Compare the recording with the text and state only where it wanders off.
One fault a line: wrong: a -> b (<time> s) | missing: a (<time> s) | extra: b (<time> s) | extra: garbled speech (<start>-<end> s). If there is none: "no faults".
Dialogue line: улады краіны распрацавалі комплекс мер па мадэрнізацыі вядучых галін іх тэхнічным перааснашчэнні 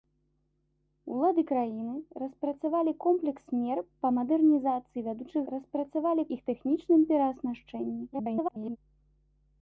wrong: галін -> распрацавалі (5.5 s)
extra: garbled speech (8.1-8.8 s)